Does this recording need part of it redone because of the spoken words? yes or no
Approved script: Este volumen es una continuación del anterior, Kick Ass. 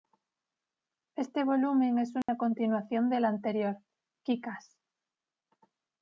no